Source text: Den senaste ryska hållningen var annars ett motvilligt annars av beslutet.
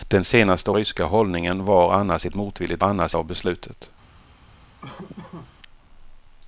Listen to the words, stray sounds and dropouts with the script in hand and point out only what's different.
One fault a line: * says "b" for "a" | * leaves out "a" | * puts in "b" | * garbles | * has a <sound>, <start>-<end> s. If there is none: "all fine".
* has a laugh, 4.8-5.5 s